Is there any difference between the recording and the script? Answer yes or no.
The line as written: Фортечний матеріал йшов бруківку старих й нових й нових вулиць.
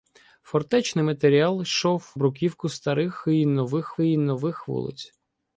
no